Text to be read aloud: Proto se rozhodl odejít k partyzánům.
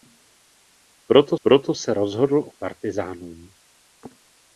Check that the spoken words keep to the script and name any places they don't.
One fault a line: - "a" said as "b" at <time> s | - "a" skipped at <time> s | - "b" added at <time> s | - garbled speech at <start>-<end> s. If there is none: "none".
- "proto" added at 1.4 s
- "odejít" skipped at 2.5 s